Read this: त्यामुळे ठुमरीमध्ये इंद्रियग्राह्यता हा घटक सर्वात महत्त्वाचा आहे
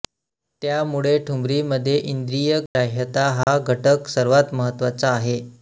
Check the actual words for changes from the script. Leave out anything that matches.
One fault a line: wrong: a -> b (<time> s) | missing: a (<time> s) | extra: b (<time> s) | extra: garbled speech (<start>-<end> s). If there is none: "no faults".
no faults